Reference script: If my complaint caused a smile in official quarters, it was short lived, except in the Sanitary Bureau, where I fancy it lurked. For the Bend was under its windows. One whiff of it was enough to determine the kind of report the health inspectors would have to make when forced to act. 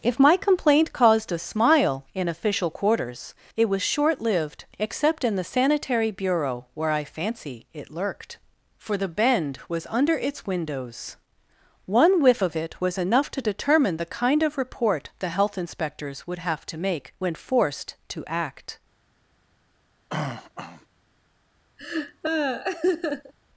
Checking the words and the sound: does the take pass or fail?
fail